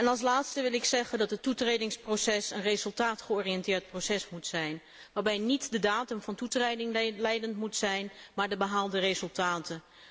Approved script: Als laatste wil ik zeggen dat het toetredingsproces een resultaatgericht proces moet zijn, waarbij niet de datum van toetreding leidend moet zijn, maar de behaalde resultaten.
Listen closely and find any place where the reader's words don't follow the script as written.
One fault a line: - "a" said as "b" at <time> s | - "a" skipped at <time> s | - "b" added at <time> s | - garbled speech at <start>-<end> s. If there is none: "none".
none